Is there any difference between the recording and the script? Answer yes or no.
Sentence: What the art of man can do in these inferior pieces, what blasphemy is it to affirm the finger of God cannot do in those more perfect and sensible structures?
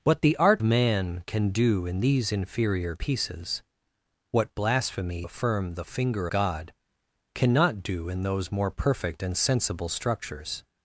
yes